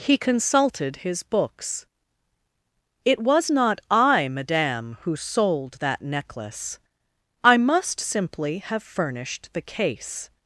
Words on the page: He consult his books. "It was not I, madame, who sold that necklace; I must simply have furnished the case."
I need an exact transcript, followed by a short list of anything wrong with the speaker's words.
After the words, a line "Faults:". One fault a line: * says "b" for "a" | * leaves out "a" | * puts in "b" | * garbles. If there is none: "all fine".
He consulted his books. "It was not I, madame, who sold that necklace; I must simply have furnished the case."
Faults:
* says "consulted" for "consult"